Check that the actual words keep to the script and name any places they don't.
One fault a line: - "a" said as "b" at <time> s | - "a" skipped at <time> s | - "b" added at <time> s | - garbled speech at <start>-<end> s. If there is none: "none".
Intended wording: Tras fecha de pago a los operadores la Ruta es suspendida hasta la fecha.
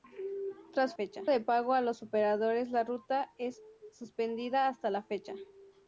none